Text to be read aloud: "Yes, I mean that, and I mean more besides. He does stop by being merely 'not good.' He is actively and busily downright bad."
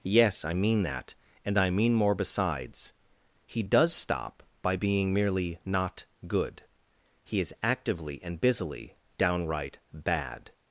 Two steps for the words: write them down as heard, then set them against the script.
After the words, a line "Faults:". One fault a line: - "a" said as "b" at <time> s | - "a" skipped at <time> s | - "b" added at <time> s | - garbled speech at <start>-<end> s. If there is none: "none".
"Yes, I mean that, and I mean more besides. He does stop by being merely 'not good.' He is actively and busily downright bad."
Faults:
none